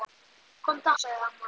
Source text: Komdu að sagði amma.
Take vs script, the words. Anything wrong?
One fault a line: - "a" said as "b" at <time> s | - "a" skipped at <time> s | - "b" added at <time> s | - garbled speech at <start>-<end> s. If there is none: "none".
none